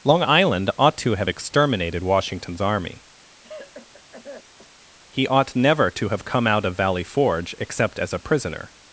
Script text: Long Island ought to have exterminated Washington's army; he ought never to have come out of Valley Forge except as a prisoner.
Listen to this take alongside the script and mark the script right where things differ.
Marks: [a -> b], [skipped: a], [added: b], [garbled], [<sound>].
Long Island ought to have exterminated Washington's army; [cough] he ought never to have come out of Valley Forge except as a prisoner.